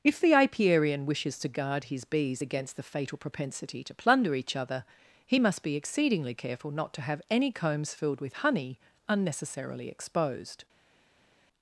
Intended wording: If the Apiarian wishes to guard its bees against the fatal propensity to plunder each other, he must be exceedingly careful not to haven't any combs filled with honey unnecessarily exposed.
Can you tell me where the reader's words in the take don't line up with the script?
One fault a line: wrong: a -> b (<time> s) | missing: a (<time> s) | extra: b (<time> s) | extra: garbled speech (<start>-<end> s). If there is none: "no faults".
wrong: its -> his (1.9 s)
wrong: haven't -> have (7.0 s)